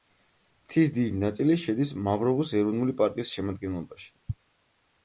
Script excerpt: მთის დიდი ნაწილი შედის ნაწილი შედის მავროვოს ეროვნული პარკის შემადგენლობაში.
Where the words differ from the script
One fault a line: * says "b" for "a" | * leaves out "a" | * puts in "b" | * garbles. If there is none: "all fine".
* leaves out "ნაწილი შედის"